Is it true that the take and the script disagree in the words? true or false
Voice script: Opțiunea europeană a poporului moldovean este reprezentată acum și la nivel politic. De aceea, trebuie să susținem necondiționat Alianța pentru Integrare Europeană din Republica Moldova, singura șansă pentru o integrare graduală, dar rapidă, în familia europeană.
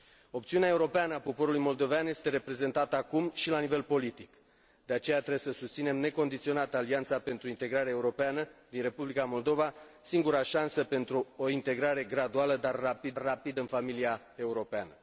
true